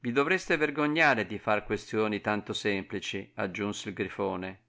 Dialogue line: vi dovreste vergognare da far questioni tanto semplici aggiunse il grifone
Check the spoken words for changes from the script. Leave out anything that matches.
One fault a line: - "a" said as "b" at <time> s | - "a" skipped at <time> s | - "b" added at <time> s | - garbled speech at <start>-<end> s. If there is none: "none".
- "da" said as "di" at 1.3 s